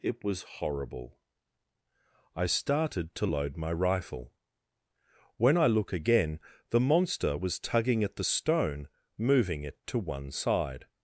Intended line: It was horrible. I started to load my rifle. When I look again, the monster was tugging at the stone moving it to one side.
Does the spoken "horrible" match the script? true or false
true